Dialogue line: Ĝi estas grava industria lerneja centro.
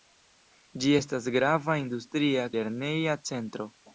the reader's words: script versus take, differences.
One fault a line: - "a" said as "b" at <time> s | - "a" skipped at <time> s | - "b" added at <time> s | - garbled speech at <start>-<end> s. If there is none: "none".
none